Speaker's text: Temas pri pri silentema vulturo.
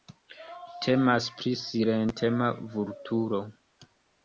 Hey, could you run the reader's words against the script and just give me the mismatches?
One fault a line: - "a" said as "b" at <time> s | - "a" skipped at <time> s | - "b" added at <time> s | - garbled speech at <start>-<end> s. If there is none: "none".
- "pri" skipped at 1.5 s